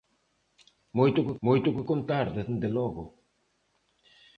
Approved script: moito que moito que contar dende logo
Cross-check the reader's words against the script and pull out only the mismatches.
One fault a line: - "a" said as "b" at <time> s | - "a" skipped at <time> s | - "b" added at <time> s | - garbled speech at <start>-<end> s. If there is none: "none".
none